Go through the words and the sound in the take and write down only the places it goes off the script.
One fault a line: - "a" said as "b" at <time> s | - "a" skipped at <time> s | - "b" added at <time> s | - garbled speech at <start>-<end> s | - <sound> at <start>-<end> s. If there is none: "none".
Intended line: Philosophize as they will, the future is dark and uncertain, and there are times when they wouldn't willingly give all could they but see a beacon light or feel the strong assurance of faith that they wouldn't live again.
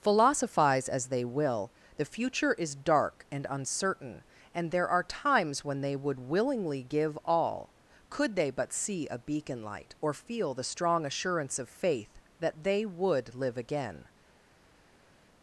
- "wouldn't" said as "would" at 6.0 s
- "wouldn't" said as "would" at 12.8 s